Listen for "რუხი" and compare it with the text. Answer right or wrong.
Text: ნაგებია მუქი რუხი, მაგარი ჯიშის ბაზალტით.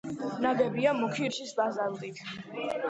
wrong